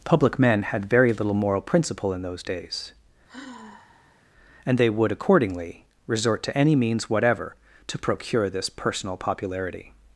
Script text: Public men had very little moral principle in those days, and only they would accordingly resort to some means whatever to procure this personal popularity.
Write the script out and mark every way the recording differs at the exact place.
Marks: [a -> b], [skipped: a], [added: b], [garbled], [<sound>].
Public men had very little moral principle in those days, [sigh] and [skipped: only] they would accordingly resort to [some -> any] means whatever to procure this personal popularity.